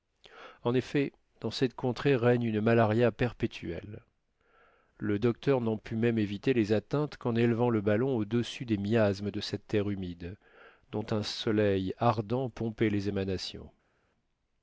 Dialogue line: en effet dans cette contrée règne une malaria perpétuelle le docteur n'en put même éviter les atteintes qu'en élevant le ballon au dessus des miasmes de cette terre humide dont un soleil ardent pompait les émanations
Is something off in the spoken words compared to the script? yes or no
no